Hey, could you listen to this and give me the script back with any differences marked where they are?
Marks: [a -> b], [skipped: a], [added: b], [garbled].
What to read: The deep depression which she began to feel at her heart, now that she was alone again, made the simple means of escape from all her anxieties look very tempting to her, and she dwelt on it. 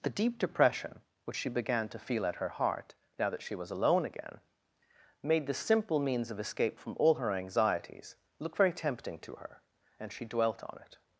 The deep depression which she began to feel at her heart, now that she was alone again, made the simple means of escape from all her anxieties look very tempting to her, and she dwelt on it.